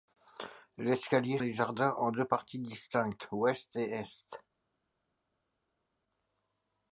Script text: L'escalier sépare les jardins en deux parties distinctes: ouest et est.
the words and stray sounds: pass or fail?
fail